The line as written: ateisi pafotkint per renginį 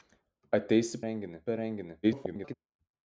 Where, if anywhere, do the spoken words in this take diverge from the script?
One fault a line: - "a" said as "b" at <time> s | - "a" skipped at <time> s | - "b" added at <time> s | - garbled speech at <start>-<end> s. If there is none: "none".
- "pafotkint" said as "renginį" at 1.1 s
- garbled speech at 2.0-2.5 s